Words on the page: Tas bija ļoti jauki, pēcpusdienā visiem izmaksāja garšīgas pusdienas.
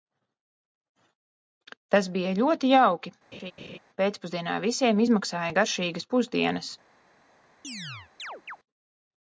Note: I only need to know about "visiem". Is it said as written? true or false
true